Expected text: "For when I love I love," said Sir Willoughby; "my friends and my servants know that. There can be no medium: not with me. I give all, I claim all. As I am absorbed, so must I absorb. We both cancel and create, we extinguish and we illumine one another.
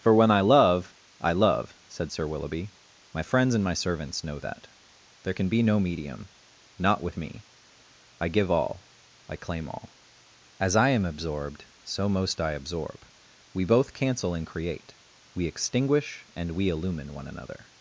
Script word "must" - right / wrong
wrong